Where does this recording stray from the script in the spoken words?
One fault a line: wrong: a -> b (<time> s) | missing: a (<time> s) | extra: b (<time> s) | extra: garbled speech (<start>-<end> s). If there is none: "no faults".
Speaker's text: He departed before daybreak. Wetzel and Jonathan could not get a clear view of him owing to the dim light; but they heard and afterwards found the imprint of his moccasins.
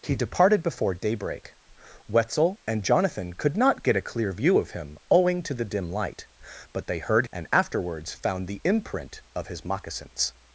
no faults